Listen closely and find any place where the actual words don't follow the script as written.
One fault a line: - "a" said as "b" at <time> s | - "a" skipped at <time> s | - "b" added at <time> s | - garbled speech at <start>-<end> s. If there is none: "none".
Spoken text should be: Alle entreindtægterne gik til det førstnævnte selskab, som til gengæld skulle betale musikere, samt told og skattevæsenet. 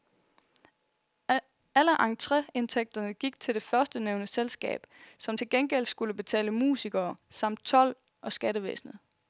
none